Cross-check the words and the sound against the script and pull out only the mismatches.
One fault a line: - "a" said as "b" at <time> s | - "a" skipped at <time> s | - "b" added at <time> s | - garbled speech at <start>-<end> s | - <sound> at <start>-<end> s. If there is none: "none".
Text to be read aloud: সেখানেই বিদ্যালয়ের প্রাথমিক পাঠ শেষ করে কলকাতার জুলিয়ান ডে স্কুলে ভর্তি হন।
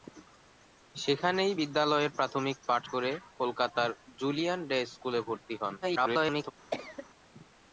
- "শেষ" skipped at 2.8 s
- garbled speech at 5.8-6.5 s
- cough at 6.7-7.1 s